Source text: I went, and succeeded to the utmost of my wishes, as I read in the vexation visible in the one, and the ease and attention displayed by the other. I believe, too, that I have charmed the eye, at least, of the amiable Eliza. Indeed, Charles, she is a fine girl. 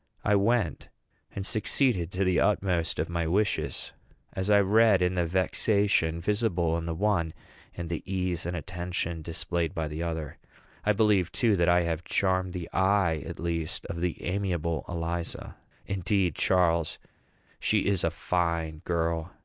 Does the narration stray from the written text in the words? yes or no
no